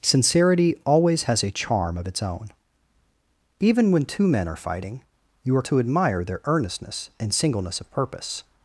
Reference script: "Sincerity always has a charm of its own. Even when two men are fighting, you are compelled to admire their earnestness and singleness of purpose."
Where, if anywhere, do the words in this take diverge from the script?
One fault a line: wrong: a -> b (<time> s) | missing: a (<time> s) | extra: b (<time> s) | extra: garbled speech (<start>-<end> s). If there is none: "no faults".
missing: compelled (5.6 s)